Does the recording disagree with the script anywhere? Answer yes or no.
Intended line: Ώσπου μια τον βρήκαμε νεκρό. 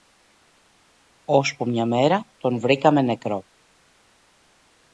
yes